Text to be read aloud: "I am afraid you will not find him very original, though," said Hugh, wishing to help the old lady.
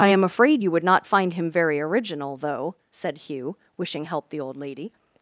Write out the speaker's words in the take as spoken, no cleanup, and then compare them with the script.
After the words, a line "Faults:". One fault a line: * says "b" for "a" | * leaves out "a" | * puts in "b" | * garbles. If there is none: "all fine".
"I am afraid you would not find him very original, though," said Hugh, wishing help the old lady.
Faults:
* says "would" for "will"
* leaves out "to"